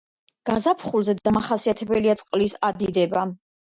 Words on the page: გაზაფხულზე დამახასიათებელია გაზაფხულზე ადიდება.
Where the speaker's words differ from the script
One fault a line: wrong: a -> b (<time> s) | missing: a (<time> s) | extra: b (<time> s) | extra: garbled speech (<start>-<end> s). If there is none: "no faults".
wrong: გაზაფხულზე -> წყლის (2.2 s)